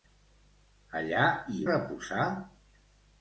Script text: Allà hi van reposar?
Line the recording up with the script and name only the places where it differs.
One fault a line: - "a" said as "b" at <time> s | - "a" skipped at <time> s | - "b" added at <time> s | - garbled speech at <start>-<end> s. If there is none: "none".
- "van" skipped at 1.6 s